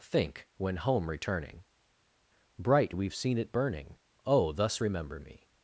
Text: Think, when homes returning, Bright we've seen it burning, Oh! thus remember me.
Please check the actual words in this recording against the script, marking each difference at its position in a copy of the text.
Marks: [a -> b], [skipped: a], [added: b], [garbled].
Think, when [homes -> home] returning, Bright we've seen it burning, Oh! thus remember me.